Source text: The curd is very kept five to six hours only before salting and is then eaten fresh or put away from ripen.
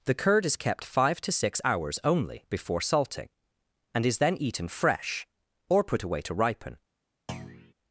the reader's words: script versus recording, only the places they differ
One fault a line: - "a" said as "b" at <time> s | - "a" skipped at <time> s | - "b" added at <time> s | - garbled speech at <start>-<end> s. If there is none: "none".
- "very" skipped at 0.6 s
- "from" said as "to" at 6.2 s